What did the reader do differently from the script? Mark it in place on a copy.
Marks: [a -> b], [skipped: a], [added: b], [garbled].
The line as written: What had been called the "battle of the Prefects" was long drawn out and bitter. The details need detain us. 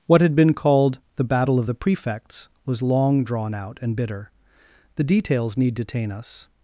What had been called the "battle of the Prefects" was long drawn out and bitter. The details need detain us.